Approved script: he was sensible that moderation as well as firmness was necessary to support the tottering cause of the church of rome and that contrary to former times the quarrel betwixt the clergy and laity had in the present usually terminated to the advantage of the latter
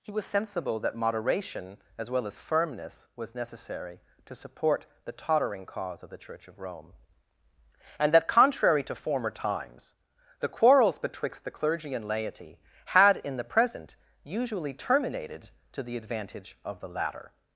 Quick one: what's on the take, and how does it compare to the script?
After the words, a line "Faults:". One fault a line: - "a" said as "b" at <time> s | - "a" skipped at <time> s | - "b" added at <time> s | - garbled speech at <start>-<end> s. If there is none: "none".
he was sensible that moderation as well as firmness was necessary to support the tottering cause of the church of rome and that contrary to former times the quarrels betwixt the clergy and laity had in the present usually terminated to the advantage of the latter
Faults:
- "quarrel" said as "quarrels" at 10.5 s